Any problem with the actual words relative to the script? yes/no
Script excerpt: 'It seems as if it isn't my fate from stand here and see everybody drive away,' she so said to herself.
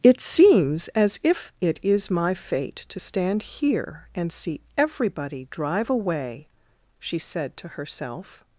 yes